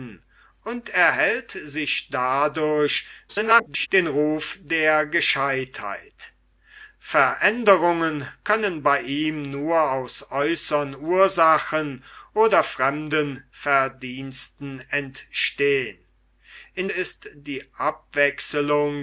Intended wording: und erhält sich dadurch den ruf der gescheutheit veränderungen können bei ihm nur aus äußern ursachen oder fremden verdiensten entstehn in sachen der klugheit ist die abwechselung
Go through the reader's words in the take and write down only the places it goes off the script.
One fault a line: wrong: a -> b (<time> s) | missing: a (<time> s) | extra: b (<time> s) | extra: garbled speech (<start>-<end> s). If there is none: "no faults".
extra: garbled speech (3.3-3.9 s)
missing: sachen der klugheit (16.9 s)